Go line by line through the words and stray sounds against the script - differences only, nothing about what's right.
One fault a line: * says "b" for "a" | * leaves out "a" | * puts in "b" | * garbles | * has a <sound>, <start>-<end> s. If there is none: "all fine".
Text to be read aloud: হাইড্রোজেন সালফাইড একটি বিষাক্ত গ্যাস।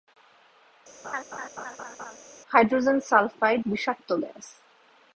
* has a laugh, 1.0-2.2 s
* leaves out "একটি"